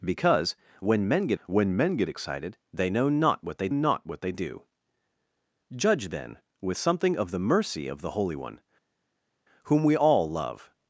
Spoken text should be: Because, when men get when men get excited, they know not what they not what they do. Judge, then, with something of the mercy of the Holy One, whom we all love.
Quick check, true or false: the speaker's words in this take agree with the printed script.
true